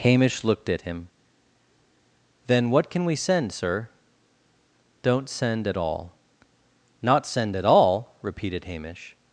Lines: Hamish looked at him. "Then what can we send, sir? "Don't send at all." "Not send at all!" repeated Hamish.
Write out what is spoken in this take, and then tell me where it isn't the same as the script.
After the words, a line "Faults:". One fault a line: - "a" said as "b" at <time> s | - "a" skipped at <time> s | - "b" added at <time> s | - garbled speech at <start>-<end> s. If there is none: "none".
Hamish looked at him. "Then what can we send, sir? "Don't send at all." "Not send at all!" repeated Hamish.
Faults:
none